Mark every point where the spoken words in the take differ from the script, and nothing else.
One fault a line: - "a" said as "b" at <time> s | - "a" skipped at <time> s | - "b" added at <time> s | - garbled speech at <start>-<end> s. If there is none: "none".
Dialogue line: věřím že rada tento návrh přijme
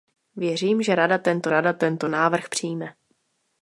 - "rada tento" added at 1.5 s